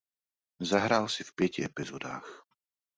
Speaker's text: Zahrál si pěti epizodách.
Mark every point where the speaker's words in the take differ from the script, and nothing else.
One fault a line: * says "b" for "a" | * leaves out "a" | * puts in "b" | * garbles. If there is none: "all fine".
* puts in "v"